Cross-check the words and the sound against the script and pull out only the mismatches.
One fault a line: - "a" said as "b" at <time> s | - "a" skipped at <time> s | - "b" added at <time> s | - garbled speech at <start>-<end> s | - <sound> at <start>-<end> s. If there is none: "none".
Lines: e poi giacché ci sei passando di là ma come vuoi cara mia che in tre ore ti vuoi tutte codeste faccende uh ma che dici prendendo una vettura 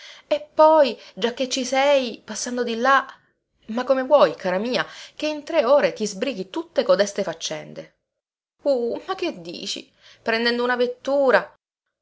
- "vuoi" said as "sbrighi" at 6.1 s